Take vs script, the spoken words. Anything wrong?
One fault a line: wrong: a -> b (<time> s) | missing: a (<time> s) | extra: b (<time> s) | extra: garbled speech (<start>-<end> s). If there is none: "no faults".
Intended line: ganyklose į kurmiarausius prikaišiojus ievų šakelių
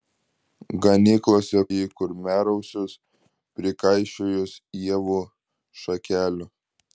no faults